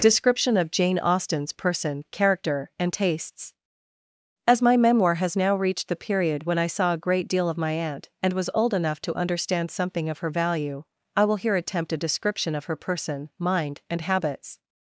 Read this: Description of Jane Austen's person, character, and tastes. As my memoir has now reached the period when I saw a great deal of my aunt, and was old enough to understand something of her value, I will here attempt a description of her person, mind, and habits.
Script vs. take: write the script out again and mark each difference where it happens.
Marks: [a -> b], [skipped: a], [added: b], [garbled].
Description of Jane Austen's person, character, and tastes. As my memoir has now reached the period when I saw a great deal of my aunt, and was old enough to understand something of her value, I will here attempt a description of her person, mind, and habits.